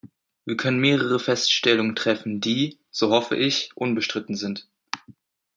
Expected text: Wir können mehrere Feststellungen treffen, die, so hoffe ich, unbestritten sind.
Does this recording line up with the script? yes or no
yes